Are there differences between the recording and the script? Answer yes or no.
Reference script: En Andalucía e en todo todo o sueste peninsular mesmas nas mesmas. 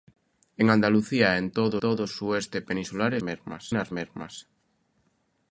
no